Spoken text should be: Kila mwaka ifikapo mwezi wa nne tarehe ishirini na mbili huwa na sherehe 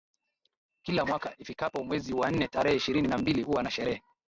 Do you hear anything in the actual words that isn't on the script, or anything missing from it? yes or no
no